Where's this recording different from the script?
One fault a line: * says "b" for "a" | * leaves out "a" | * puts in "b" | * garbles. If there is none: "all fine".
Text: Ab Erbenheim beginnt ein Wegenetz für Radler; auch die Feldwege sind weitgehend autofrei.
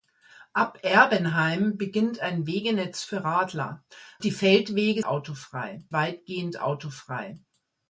* leaves out "auch"
* says "autofrei" for "sind"